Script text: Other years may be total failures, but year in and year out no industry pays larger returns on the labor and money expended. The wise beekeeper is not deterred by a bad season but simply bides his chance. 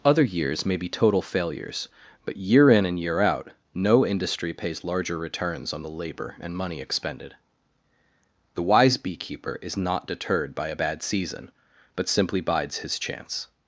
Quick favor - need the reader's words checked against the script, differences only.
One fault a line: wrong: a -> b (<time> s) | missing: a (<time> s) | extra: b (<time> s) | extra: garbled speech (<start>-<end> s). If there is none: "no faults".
no faults